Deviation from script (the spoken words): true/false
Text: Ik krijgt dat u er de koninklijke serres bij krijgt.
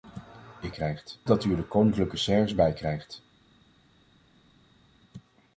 false